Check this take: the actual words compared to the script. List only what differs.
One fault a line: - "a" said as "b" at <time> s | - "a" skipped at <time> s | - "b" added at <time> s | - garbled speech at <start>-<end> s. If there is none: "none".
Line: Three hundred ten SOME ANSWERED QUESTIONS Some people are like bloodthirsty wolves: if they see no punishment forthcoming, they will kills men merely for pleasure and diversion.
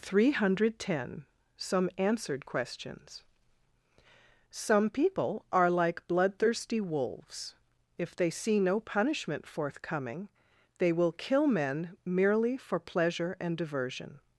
- "kills" said as "kill" at 11.1 s